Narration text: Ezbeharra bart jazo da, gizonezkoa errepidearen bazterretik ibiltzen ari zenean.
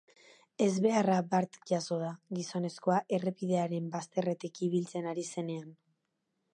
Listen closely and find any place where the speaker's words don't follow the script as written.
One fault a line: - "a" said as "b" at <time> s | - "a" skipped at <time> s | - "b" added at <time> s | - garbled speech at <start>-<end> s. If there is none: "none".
none